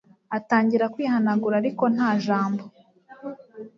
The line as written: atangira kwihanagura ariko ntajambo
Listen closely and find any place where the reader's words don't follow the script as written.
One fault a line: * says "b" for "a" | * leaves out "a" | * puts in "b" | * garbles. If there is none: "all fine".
all fine